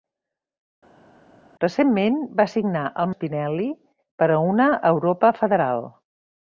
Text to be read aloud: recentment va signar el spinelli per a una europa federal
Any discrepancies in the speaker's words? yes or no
no